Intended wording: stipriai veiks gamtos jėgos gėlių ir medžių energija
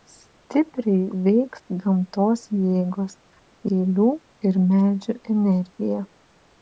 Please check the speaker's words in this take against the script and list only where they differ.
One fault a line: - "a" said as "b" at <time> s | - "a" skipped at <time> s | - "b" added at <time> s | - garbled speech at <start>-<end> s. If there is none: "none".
none